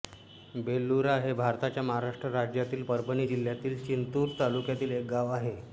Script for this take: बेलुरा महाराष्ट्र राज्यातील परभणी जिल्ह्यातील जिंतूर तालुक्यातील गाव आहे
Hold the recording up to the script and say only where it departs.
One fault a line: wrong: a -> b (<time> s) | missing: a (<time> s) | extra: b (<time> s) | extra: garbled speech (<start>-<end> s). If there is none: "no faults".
extra: हे भारताच्या (1.2 s)
extra: एक (4.9 s)